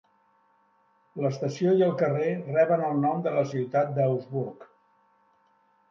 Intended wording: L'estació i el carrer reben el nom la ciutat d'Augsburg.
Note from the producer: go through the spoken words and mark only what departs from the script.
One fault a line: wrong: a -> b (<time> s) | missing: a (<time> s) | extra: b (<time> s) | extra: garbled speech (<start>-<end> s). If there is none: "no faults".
extra: de (3.3 s)